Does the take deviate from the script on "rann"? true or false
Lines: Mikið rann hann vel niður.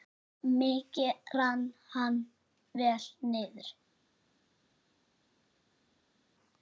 false